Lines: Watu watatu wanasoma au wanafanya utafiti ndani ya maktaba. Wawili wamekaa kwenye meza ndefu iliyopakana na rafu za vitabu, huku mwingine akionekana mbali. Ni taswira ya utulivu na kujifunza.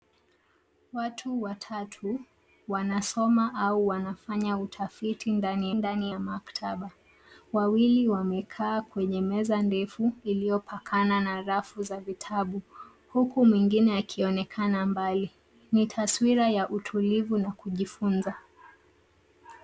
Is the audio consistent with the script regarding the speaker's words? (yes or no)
no